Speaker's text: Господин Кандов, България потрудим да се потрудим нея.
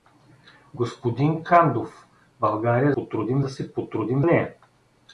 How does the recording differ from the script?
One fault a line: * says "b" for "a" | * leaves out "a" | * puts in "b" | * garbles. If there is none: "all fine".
all fine